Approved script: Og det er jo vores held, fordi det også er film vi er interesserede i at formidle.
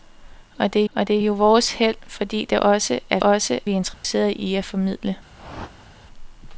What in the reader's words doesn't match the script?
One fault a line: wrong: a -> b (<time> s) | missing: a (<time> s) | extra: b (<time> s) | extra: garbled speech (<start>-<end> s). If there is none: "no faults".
extra: og det (0.9 s)
wrong: film -> også (3.2 s)